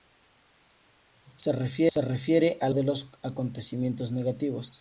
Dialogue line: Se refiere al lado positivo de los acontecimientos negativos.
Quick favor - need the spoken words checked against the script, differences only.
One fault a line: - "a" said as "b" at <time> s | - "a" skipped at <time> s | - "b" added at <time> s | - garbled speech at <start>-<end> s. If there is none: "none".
- "lado positivo" skipped at 2.7 s